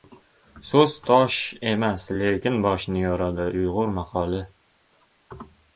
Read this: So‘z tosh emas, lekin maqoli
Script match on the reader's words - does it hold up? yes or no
no